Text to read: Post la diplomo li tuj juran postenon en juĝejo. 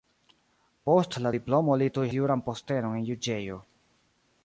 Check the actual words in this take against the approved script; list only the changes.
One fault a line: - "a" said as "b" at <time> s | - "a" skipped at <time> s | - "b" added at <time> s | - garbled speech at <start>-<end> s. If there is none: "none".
none